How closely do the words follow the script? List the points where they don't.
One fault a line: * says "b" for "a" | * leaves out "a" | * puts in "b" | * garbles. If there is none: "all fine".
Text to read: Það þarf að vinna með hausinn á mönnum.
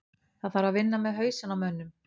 all fine